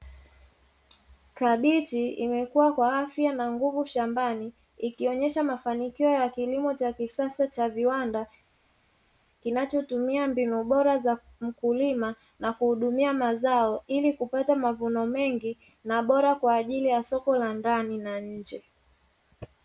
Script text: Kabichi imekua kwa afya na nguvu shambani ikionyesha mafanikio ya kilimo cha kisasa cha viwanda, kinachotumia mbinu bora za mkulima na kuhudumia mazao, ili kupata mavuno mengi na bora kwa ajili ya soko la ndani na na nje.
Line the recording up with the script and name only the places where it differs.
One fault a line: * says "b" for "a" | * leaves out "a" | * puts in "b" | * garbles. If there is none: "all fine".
* leaves out "na"